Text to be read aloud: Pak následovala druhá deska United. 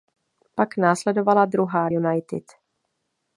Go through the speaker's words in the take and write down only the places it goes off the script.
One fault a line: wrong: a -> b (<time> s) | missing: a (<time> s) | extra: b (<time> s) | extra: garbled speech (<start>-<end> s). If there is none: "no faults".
missing: deska (1.9 s)